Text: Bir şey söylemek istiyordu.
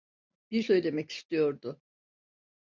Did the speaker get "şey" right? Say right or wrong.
wrong